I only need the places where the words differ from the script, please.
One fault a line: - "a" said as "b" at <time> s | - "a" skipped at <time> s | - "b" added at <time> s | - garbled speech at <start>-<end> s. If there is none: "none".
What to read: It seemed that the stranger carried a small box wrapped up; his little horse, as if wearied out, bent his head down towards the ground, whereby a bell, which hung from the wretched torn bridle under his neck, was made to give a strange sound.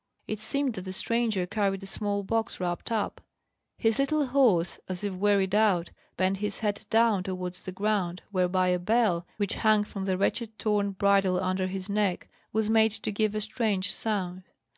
none